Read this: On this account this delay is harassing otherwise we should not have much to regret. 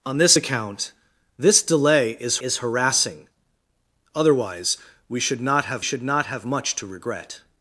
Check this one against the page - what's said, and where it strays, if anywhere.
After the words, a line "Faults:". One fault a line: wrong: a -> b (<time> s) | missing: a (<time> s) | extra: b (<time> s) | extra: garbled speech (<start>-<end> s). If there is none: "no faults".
On this account this delay is is harassing otherwise we should not have should not have much to regret.
Faults:
extra: is (2.4 s)
extra: should not have (5.8 s)